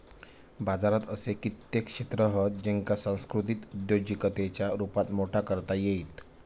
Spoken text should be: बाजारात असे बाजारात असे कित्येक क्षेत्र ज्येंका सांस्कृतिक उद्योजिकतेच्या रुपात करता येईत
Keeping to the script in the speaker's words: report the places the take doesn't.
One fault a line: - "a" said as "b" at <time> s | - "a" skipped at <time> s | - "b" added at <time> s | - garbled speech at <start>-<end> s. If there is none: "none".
- "बाजारात असे" skipped at 1.3 s
- "हत" added at 2.3 s
- "मोठा" added at 5.1 s